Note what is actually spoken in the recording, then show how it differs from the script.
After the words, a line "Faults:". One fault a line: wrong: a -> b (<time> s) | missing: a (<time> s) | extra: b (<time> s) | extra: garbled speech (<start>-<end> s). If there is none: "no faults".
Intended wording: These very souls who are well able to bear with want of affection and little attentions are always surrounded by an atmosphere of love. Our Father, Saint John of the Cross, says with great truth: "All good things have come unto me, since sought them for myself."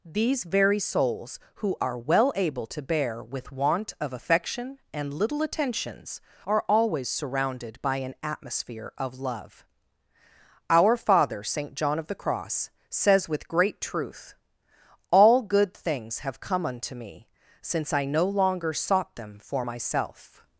These very souls who are well able to bear with want of affection and little attentions are always surrounded by an atmosphere of love. Our Father, Saint John of the Cross, says with great truth: "All good things have come unto me, since I no longer sought them for myself."
Faults:
extra: I no longer (17.9 s)